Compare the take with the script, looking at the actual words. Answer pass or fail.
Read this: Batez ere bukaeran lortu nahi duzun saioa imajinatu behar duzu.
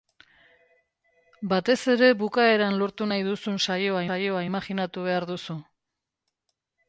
fail